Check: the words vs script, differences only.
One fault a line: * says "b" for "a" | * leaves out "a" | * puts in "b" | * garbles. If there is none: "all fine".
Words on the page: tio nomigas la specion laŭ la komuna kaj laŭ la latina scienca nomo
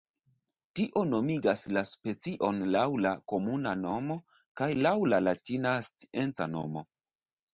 * puts in "nomo"